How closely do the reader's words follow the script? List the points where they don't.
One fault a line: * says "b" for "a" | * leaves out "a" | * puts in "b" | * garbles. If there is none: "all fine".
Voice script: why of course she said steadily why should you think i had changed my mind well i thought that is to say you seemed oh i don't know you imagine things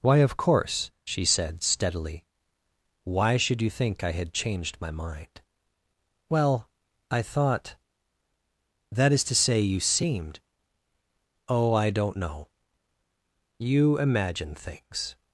all fine